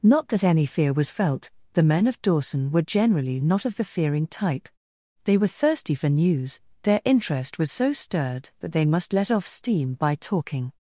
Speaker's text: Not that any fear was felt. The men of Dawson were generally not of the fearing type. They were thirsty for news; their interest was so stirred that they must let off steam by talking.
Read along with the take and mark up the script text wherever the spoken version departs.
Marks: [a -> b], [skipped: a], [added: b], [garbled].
Not that any fear was felt. The men of Dawson were generally not of the fearing type. They were thirsty for news; their interest was so stirred that they must let off steam by talking.